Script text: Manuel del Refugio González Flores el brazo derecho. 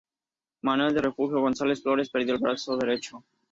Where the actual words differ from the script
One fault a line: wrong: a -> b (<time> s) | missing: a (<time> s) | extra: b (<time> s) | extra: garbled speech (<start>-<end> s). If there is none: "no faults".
extra: perdió (2.1 s)